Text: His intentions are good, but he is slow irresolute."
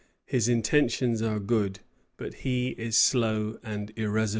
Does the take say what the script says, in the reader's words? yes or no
no